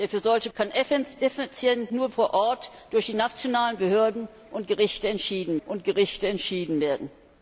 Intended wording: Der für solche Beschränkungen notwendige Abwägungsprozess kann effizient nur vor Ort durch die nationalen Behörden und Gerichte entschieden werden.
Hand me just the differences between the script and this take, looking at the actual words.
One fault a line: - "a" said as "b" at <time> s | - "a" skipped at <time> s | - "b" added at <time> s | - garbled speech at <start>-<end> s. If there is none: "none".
- "Beschränkungen notwendige Abwägungsprozess" skipped at 0.5 s
- "und Gerichte entschieden" added at 5.6 s